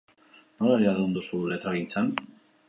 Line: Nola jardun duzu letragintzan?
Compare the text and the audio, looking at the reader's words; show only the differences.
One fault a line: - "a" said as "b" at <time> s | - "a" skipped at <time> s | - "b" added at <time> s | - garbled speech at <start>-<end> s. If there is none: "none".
none